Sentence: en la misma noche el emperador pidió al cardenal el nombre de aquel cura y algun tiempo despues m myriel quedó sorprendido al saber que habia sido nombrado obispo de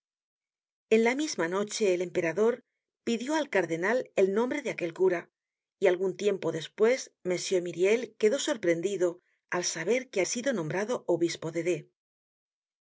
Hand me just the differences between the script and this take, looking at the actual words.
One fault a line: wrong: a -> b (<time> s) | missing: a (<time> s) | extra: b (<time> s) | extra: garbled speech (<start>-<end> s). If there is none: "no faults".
missing: habia (10.2 s)